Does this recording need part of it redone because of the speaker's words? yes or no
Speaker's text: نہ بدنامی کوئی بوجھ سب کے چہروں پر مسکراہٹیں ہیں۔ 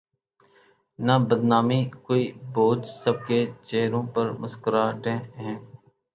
no